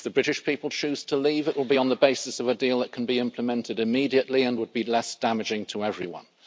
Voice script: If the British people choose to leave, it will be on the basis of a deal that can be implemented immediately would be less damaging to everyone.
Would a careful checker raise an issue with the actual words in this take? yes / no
yes